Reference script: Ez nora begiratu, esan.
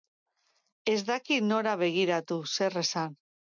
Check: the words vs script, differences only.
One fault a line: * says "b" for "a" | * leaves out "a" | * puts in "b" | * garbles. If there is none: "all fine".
* puts in "daki"
* puts in "zer"